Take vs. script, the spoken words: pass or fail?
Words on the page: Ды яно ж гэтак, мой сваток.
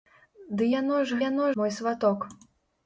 fail